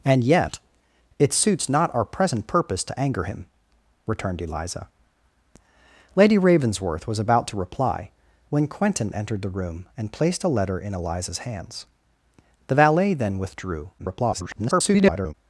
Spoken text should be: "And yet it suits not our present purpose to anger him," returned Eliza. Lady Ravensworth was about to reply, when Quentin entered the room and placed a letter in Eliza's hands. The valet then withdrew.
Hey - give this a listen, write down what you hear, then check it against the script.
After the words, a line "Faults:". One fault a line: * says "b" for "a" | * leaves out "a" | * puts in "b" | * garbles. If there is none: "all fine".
"And yet it suits not our present purpose to anger him," returned Eliza. Lady Ravensworth was about to reply, when Quentin entered the room and placed a letter in Eliza's hands. The valet then withdrew. [garbled]
Faults:
* garbles